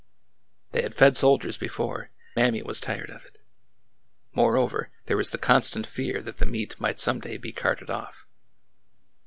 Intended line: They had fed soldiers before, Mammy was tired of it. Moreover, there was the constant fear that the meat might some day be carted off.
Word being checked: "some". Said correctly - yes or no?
yes